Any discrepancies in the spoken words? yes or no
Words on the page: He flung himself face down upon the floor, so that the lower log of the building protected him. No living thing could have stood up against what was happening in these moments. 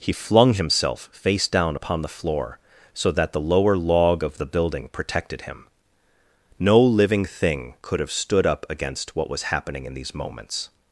no